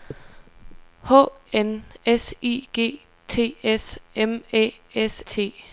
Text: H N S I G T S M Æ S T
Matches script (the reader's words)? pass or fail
pass